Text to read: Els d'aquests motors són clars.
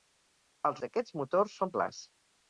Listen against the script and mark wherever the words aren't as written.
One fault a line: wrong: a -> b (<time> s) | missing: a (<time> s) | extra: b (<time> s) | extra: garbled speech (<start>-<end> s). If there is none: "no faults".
no faults